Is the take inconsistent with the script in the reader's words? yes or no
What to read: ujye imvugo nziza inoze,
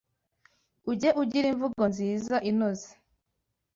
yes